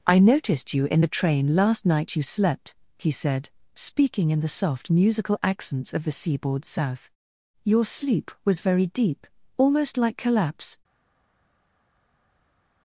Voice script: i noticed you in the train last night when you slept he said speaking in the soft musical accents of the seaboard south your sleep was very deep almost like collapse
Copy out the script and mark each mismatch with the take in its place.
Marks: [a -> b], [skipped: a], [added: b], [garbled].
i noticed you in the train last night [skipped: when] you slept he said speaking in the soft musical accents of the seaboard south your sleep was very deep almost like collapse